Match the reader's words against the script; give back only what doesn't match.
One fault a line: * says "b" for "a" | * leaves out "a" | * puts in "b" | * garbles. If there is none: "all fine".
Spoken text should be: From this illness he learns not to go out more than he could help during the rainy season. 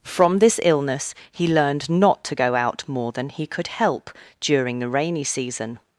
* says "learned" for "learns"